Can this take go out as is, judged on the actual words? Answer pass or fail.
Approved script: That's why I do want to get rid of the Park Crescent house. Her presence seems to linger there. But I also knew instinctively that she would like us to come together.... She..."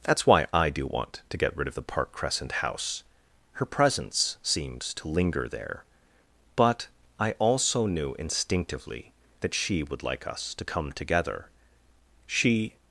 pass